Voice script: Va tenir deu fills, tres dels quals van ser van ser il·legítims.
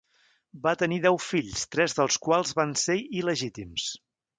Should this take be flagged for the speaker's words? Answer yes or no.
yes